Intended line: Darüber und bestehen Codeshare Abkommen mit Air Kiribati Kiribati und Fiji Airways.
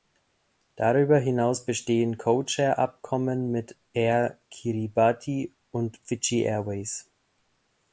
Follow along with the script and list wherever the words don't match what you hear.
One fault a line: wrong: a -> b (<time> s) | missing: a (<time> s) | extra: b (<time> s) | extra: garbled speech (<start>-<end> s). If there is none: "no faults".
wrong: und -> hinaus (1.2 s)
missing: Kiribati (5.5 s)